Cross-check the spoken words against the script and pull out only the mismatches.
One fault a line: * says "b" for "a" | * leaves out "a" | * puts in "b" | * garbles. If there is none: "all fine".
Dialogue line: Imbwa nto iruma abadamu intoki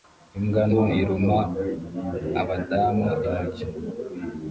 all fine